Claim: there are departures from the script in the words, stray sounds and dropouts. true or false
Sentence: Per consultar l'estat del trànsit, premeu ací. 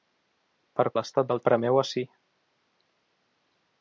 true